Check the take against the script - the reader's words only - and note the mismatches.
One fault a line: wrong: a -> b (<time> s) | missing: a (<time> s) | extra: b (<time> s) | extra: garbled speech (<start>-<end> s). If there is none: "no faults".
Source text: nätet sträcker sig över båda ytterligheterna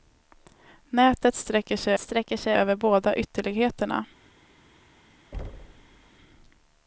extra: sträcker sig (2.0 s)